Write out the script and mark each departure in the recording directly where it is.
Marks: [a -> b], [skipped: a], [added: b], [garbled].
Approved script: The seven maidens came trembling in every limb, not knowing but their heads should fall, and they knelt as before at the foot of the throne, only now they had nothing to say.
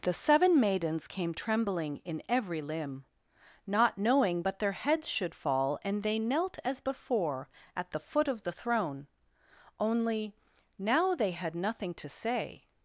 The seven maidens came trembling in every limb, not knowing but their heads should fall, and they knelt as before at the foot of the throne, only now they had nothing to say.